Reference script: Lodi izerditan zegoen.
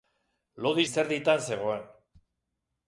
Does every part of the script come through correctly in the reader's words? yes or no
yes